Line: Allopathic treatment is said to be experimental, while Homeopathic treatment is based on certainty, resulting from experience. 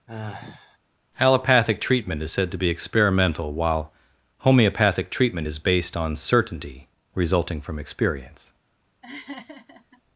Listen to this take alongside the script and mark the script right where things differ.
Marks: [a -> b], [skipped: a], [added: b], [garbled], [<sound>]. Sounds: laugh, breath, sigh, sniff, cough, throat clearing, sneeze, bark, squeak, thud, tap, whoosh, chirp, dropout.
[sigh] Allopathic treatment is said to be experimental, while Homeopathic treatment is based on certainty, resulting from experience. [laugh]